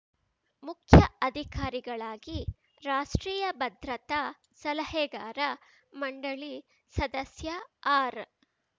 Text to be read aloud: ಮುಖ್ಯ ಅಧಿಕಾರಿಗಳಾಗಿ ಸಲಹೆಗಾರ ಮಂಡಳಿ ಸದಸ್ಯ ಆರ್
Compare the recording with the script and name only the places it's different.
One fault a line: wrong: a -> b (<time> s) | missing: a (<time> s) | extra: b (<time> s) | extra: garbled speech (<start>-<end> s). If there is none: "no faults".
extra: ರಾಷ್ಟ್ರೀಯ ಭದ್ರತಾ (2.8 s)